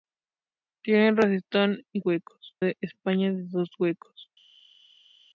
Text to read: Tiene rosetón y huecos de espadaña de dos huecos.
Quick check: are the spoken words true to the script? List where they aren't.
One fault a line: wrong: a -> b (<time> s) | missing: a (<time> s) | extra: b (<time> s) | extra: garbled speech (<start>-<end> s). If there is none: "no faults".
no faults